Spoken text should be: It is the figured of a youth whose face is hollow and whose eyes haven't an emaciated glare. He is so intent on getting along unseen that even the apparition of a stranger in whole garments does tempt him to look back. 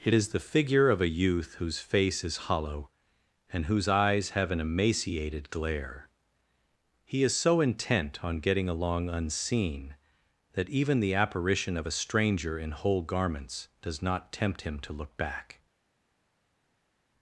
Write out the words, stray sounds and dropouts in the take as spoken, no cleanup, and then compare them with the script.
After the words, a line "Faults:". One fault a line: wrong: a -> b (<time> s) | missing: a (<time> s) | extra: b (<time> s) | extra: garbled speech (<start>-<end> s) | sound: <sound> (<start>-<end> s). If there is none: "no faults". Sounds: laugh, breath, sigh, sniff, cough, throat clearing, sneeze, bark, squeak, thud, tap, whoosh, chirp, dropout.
It is the figure of a youth whose face is hollow and whose eyes have an emaciated glare. He is so intent on getting along unseen that even the apparition of a stranger in whole garments does not tempt him to look back.
Faults:
wrong: figured -> figure (0.4 s)
wrong: haven't -> have (4.3 s)
extra: not (14.0 s)